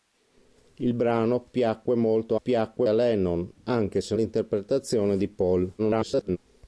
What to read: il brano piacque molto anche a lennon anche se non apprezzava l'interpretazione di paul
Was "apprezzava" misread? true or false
true